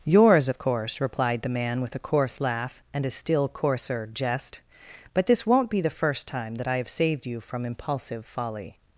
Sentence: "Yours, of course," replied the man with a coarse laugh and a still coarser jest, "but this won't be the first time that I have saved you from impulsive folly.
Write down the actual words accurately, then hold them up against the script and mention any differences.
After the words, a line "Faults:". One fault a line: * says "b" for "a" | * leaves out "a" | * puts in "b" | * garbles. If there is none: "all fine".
"Yours, of course," replied the man with a coarse laugh and a still coarser jest, "but this won't be the first time that I have saved you from impulsive folly.
Faults:
all fine